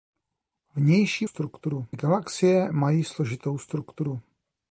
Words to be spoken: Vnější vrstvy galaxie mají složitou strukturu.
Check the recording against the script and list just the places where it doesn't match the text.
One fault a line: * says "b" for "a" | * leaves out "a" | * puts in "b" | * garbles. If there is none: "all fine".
* says "strukturu" for "vrstvy"